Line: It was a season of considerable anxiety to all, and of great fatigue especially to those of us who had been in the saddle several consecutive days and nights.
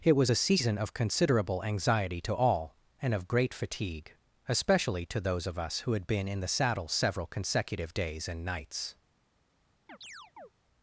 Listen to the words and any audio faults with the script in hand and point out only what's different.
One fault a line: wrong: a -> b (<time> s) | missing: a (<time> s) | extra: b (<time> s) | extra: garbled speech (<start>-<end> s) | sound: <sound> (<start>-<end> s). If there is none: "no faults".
sound: chirp (9.9-10.5 s)